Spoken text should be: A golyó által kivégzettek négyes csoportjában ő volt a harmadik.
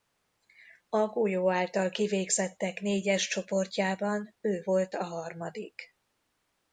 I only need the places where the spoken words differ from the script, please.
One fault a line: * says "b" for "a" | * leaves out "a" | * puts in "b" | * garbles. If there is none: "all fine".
all fine